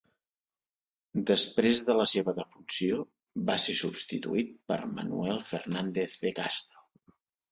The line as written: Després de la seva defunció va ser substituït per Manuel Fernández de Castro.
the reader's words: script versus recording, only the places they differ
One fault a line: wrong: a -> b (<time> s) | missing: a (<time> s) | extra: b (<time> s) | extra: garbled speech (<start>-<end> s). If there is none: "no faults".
no faults